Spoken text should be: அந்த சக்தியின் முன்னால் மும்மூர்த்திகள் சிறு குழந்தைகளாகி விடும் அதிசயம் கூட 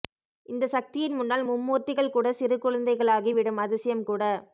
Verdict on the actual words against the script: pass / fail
fail